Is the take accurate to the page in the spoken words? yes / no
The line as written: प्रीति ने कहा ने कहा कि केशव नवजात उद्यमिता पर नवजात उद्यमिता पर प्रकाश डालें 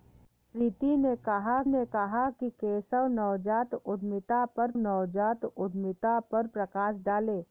yes